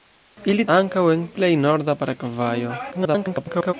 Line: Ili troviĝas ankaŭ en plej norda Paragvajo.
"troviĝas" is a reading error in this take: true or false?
true